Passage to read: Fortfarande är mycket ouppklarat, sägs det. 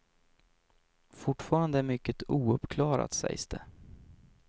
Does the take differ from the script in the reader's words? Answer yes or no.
no